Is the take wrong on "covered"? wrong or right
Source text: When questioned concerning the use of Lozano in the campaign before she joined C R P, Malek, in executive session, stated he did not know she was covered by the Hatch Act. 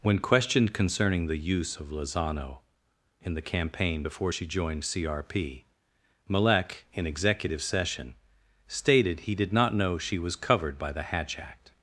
right